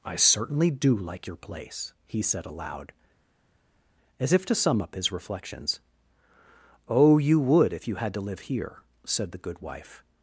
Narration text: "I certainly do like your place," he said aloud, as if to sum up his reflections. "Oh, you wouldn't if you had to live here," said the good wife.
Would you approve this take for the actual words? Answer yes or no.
no